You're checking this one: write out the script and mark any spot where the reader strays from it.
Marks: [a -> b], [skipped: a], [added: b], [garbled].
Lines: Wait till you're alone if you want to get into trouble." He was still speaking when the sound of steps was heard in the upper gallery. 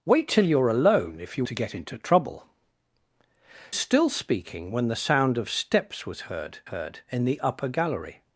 Wait till you're alone if you [skipped: want] to get into trouble." [skipped: He was] still speaking when the sound of steps was heard [added: heard] in the upper gallery.